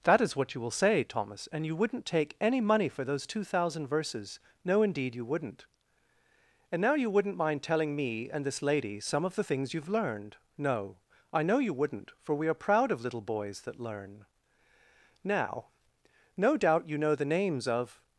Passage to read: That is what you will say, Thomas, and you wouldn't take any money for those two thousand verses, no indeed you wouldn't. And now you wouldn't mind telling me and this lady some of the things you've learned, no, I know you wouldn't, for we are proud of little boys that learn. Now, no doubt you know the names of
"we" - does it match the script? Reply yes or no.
yes